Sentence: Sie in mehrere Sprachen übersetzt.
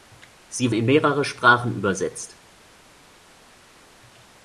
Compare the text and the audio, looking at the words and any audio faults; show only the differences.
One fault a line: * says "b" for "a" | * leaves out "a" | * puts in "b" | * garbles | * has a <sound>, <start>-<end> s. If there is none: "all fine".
all fine